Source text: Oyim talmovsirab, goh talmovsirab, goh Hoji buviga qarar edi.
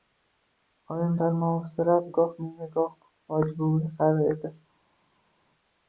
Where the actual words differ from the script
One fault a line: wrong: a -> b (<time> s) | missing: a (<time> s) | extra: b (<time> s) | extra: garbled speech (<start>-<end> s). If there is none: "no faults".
wrong: talmovsirab -> menga (2.4 s)